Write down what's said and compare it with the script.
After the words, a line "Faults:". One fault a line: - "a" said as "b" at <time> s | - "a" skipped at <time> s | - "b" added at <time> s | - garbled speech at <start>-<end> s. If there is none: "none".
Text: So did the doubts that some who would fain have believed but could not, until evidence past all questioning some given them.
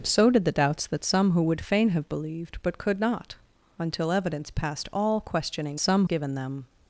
So did the doubts that some who would fain have believed but could not, until evidence past all questioning some given them.
Faults:
none